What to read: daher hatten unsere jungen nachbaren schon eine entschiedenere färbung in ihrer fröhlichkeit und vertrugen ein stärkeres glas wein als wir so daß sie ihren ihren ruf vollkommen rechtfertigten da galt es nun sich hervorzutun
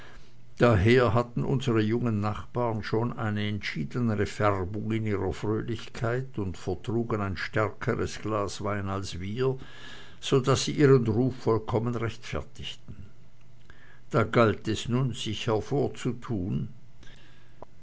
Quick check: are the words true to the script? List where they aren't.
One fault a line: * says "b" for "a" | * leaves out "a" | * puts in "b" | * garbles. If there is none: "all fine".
* leaves out "ihren"